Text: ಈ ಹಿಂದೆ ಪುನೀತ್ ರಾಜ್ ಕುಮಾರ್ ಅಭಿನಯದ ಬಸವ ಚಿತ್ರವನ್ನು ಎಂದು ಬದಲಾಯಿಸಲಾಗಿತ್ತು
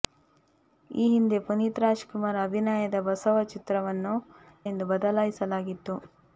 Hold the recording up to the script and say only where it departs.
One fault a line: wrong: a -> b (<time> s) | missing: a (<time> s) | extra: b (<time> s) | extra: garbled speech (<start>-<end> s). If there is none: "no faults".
no faults